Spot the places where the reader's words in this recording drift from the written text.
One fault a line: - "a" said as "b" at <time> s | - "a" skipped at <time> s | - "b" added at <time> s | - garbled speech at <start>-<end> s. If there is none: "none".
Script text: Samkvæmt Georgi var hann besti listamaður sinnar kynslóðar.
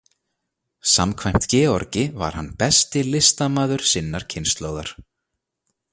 none